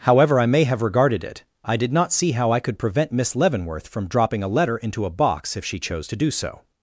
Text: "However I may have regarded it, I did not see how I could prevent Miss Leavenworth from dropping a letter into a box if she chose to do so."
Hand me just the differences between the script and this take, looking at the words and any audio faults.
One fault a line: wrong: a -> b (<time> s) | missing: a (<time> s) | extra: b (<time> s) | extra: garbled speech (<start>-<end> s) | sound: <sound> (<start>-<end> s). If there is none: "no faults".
no faults